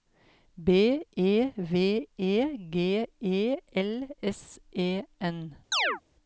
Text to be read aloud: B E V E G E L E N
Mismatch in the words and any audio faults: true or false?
true